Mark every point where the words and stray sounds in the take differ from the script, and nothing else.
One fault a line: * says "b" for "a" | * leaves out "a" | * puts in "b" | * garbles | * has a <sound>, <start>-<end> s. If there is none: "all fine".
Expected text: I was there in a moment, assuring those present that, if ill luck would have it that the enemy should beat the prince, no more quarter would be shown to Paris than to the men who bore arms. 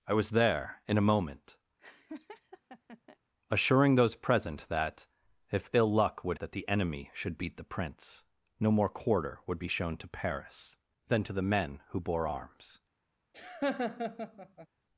* has a laugh, 1.8-3.2 s
* leaves out "have it"
* has a laugh, 13.3-14.7 s